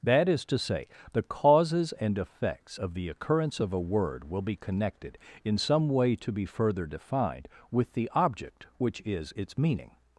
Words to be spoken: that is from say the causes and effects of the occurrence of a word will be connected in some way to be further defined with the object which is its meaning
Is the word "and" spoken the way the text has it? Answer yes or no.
yes